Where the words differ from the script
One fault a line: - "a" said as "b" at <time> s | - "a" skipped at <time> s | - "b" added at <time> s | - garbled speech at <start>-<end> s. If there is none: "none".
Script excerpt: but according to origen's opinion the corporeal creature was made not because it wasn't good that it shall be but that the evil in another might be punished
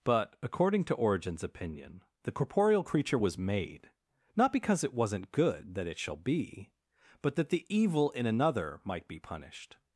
none